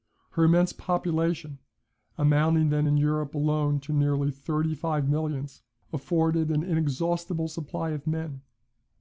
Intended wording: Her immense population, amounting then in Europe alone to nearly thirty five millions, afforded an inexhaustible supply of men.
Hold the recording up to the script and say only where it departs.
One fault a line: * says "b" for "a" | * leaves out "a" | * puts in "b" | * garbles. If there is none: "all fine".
all fine